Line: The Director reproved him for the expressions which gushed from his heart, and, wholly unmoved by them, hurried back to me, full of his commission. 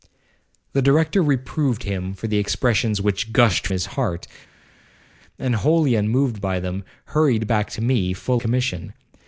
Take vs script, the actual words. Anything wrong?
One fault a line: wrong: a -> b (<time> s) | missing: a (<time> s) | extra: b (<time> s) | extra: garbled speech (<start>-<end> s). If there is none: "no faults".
missing: from (3.7 s)
missing: of his (8.4 s)